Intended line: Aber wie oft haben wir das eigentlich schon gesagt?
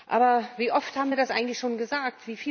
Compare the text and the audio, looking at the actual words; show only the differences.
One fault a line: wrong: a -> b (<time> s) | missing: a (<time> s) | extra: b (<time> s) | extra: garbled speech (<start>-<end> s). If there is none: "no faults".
no faults